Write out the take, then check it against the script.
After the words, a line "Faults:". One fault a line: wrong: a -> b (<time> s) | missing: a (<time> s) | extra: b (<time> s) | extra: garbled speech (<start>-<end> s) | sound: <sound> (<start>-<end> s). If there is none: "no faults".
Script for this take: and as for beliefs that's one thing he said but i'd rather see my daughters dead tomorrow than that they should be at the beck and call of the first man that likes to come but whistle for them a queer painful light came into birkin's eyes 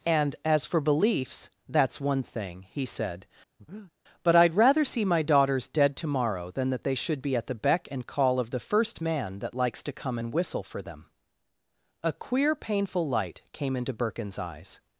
and as for beliefs that's one thing he said but i'd rather see my daughters dead tomorrow than that they should be at the beck and call of the first man that likes to come and whistle for them a queer painful light came into birkin's eyes
Faults:
sound: breath (3.6-3.9 s)
wrong: but -> and (10.2 s)